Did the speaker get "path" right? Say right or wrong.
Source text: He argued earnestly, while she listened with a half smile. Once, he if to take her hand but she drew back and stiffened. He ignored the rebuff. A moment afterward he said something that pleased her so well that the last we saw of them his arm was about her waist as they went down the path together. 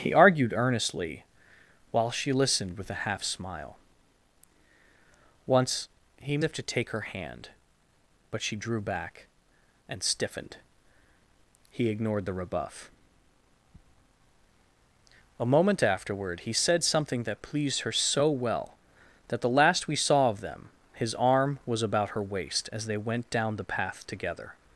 right